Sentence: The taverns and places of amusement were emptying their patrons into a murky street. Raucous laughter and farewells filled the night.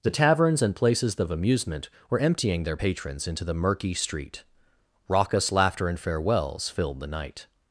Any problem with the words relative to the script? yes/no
yes